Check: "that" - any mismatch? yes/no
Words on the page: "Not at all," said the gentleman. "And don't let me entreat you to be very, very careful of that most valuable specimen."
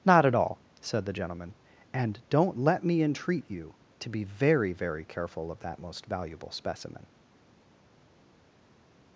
no